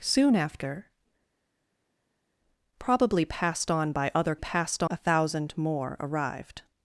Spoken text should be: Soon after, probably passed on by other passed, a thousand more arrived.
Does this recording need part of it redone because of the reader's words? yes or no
no